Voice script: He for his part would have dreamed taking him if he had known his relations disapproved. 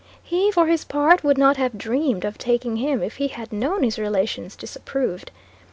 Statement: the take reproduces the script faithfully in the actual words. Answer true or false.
false